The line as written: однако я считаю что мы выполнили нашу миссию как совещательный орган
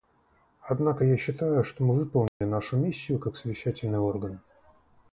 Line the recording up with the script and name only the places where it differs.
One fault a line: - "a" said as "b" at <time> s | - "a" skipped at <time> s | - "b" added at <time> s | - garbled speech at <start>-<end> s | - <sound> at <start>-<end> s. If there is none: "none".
- dropout at 2.3-2.4 s